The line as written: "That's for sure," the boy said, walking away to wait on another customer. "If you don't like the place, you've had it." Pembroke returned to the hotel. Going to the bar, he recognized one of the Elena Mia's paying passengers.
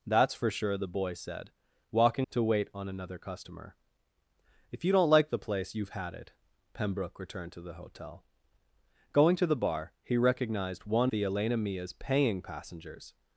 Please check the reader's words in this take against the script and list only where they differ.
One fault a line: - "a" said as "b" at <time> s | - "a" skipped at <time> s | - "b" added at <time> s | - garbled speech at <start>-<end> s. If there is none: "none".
- "away" skipped at 2.3 s
- "of" skipped at 11.1 s